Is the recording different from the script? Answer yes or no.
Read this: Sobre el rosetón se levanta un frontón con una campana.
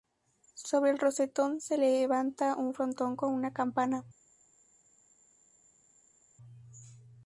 no